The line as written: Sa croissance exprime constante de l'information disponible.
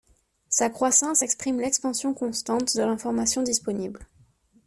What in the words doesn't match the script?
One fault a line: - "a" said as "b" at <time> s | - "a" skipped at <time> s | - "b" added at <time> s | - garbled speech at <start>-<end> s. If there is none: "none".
- "l'expansion" added at 1.6 s